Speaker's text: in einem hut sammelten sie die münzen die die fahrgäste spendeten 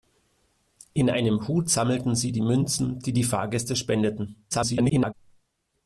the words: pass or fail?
fail